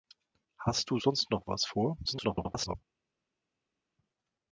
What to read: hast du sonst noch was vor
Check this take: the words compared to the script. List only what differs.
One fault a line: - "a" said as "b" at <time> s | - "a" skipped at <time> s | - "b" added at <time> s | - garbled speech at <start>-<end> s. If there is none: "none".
- garbled speech at 2.0-2.8 s